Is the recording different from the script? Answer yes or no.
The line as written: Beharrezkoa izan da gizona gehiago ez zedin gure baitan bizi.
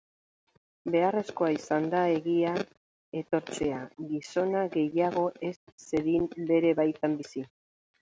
yes